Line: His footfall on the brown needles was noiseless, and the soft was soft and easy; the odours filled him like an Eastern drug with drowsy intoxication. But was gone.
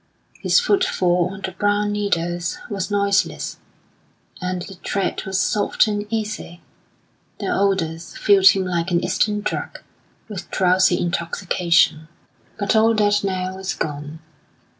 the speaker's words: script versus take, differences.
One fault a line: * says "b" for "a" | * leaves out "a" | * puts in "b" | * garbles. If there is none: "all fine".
* says "tread" for "soft"
* puts in "all that now"